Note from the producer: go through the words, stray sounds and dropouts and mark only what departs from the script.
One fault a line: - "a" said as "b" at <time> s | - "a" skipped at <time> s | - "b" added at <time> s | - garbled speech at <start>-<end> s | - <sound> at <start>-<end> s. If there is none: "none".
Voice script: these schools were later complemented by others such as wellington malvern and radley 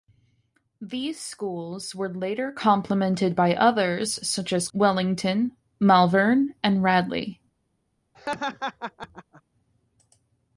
- laugh at 8.1-9.4 s